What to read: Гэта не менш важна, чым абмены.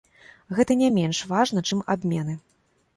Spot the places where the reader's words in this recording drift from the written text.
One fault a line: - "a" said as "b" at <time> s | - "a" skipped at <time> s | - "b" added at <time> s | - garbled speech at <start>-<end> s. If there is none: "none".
none